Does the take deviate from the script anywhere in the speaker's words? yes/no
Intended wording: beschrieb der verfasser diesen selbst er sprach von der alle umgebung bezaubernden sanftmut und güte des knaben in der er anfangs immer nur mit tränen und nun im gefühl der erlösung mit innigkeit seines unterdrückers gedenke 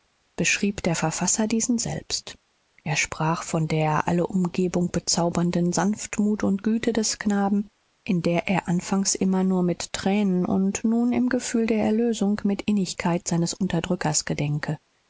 no